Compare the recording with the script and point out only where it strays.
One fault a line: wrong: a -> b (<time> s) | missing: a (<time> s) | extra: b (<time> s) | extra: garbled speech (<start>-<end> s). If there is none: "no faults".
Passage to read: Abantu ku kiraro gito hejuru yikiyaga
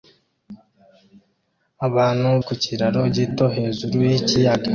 no faults